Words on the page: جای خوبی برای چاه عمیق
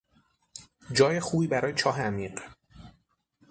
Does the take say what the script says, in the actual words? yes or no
yes